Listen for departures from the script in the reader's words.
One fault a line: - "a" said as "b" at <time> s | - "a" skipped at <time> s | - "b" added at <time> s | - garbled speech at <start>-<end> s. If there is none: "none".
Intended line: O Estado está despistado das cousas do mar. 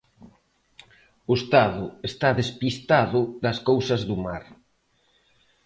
none